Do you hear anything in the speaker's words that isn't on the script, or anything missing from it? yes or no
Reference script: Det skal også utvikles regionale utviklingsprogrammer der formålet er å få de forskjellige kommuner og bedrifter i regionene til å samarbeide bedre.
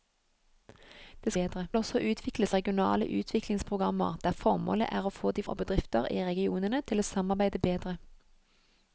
yes